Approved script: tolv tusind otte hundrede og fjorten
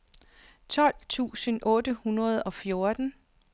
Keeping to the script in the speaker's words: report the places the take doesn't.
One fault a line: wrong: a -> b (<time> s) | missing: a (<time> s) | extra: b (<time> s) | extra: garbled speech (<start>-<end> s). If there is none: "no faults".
no faults